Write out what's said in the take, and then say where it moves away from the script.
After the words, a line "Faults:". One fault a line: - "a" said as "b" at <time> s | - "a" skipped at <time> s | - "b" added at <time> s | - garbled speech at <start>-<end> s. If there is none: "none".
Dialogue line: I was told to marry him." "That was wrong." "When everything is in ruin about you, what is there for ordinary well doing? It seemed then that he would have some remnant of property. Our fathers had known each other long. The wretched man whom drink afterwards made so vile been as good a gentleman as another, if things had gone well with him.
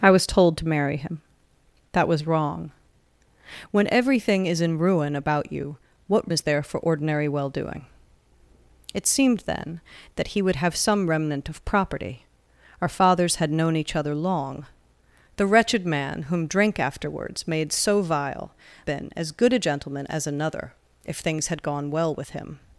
I was told to marry him." "That was wrong." "When everything is in ruin about you, what is there for ordinary well doing? It seemed then that he would have some remnant of property. Our fathers had known each other long. The wretched man whom drink afterwards made so vile been as good a gentleman as another, if things had gone well with him.
Faults:
none